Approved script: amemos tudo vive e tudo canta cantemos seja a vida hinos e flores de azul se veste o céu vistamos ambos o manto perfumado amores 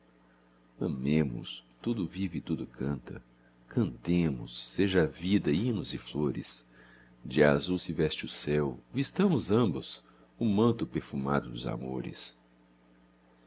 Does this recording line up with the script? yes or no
no